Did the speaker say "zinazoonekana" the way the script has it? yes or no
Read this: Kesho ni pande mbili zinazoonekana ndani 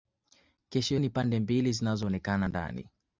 yes